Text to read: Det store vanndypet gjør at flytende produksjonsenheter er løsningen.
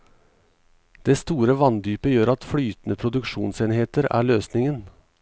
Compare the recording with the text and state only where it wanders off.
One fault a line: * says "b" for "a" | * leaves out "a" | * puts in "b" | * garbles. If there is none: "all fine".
all fine